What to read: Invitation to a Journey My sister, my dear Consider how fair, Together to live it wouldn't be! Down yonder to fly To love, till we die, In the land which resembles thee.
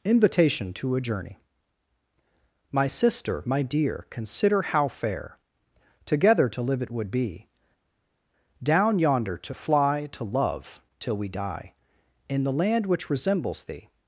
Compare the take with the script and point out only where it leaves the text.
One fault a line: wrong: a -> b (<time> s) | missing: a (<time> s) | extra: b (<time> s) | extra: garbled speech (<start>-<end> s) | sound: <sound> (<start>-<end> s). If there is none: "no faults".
wrong: wouldn't -> would (6.9 s)